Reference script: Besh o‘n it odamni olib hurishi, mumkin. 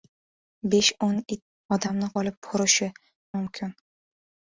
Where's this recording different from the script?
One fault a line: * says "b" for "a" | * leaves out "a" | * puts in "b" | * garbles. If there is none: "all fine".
all fine